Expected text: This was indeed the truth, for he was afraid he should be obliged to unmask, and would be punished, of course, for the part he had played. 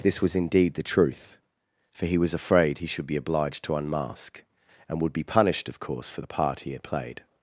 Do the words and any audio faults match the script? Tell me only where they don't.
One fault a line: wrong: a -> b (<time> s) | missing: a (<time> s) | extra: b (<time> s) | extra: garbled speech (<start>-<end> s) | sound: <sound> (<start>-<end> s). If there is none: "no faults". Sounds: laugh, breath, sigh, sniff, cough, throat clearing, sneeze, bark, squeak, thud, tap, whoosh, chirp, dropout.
no faults